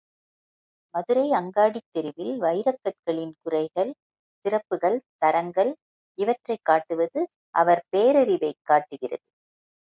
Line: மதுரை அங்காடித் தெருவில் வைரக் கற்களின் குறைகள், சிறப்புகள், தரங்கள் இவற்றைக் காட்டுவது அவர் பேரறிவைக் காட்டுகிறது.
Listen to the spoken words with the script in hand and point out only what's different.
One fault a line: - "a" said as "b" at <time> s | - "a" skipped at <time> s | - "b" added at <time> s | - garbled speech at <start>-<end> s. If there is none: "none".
none